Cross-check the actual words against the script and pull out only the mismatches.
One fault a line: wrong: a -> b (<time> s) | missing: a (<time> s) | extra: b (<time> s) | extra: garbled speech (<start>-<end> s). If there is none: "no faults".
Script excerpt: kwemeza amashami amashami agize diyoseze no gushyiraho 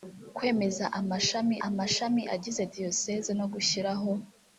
no faults